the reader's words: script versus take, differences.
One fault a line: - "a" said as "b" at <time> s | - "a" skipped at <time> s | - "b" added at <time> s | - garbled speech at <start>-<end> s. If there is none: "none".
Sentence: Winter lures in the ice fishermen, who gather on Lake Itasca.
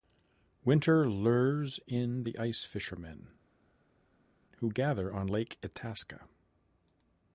none